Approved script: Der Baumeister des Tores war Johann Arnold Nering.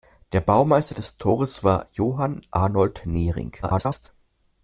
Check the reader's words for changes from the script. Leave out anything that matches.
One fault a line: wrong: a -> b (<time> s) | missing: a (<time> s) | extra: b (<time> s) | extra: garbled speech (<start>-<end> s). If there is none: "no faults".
extra: garbled speech (3.6-4.1 s)